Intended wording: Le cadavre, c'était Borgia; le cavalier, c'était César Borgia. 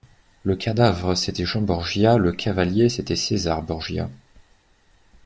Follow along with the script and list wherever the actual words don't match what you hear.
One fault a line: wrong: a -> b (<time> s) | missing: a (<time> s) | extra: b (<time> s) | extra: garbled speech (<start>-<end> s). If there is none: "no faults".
extra: Jean (1.4 s)